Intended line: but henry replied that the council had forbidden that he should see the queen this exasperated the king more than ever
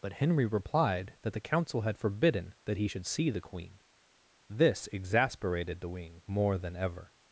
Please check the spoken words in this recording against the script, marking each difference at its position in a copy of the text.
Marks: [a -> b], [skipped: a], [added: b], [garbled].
but henry replied that the council had forbidden that he should see the queen this exasperated the [king -> wing] more than ever